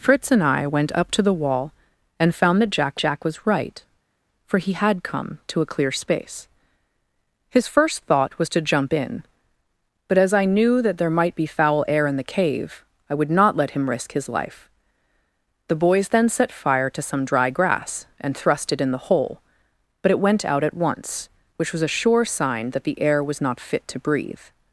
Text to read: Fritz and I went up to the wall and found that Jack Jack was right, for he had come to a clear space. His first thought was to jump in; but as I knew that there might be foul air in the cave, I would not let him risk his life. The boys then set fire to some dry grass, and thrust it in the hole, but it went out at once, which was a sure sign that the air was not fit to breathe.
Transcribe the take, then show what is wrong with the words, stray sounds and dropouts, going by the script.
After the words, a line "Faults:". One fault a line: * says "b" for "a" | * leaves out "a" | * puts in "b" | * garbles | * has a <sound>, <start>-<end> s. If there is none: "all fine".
Fritz and I went up to the wall and found that Jack Jack was right, for he had come to a clear space. His first thought was to jump in; but as I knew that there might be foul air in the cave, I would not let him risk his life. The boys then set fire to some dry grass, and thrust it in the hole, but it went out at once, which was a sure sign that the air was not fit to breathe.
Faults:
all fine